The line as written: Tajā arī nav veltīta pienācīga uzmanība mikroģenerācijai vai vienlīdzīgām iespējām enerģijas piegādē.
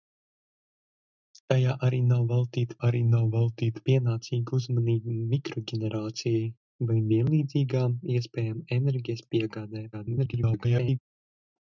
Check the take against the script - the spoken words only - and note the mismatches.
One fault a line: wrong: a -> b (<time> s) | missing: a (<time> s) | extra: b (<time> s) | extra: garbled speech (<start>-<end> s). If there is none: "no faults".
extra: arī nav veltīta (2.9 s)
extra: garbled speech (9.9-11.0 s)